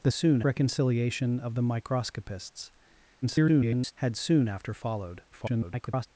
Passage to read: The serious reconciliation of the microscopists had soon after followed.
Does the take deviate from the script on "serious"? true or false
true